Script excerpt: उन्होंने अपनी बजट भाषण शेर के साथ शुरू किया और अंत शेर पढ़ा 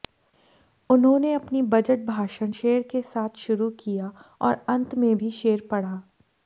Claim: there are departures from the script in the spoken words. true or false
true